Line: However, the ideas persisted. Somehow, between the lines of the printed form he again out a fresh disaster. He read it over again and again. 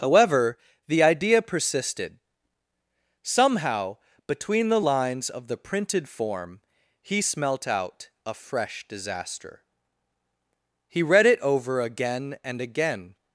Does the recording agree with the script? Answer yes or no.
no